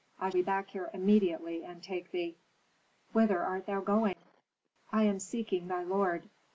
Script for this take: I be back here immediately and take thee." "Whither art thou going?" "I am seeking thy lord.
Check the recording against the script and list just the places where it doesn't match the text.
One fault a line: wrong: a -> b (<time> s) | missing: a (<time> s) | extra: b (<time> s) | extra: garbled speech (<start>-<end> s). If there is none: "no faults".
no faults